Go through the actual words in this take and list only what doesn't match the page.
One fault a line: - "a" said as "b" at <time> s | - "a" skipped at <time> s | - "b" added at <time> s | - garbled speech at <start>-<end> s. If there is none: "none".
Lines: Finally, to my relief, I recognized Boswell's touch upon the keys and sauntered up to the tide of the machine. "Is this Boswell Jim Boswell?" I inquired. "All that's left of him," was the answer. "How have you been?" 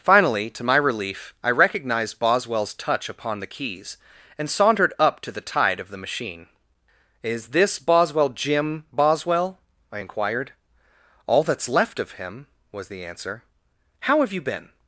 none